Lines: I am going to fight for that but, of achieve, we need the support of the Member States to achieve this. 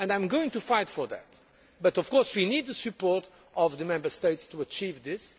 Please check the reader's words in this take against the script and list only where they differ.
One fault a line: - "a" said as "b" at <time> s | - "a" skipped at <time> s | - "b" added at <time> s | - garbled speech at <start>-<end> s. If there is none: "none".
- "achieve" said as "course" at 2.1 s